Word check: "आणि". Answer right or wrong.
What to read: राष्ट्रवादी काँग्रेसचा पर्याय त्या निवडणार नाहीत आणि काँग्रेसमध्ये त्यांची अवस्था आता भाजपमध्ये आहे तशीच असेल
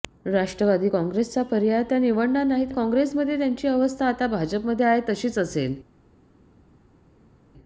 wrong